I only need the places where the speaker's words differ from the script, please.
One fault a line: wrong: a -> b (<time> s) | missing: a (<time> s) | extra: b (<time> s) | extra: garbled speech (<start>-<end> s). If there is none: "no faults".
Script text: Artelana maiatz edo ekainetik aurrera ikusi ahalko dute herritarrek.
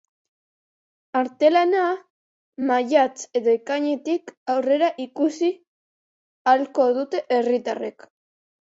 no faults